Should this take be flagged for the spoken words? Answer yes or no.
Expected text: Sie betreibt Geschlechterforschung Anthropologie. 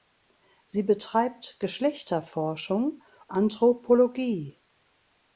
no